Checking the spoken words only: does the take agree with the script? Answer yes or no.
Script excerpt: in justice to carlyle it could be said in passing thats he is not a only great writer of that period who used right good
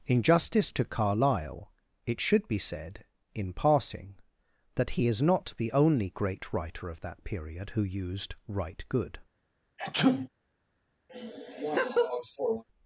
no